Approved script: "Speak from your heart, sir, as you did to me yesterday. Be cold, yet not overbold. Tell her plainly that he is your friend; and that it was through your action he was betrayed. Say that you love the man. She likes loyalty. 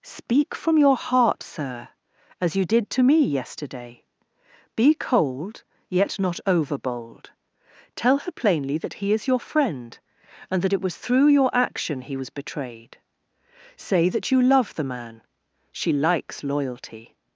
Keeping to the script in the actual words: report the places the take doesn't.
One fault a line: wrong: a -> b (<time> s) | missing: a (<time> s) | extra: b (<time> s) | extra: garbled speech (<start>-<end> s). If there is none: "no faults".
no faults